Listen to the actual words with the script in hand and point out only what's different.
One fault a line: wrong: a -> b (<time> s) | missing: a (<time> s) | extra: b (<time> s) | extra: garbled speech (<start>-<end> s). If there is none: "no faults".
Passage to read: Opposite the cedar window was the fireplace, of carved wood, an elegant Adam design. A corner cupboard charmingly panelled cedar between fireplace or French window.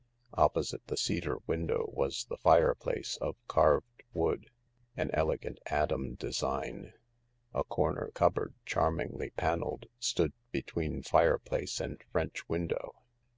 wrong: cedar -> stood (10.0 s)
wrong: or -> and (11.8 s)